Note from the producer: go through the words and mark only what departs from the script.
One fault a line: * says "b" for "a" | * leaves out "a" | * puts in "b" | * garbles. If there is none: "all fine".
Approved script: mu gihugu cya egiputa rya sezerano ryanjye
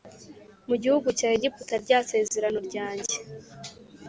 all fine